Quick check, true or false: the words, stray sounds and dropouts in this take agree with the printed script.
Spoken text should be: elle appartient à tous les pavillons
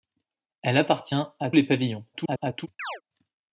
false